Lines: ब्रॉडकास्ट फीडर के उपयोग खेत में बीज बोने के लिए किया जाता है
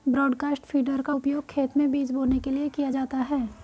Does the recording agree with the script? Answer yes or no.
no